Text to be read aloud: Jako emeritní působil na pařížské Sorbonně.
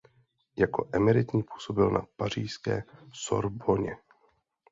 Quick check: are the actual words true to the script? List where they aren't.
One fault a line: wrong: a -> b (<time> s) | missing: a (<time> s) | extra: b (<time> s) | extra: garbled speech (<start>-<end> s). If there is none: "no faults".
no faults